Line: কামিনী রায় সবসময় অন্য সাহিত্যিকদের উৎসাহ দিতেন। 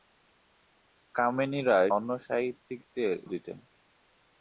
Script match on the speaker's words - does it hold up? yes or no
no